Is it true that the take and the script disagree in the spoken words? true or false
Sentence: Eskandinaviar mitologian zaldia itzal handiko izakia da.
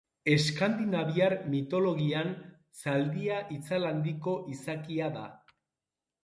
false